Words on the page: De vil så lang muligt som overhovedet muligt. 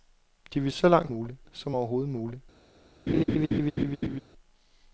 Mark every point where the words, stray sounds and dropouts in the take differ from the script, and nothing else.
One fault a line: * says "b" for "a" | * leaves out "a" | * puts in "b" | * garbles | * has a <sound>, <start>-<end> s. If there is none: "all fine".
* has a laugh, 3.1-4.2 s